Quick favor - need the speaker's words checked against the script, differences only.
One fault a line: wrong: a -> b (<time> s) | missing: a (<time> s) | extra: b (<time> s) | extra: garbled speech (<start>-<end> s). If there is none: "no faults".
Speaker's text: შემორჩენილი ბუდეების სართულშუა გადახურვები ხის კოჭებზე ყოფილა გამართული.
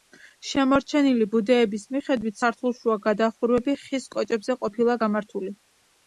extra: მიხედვით (1.9 s)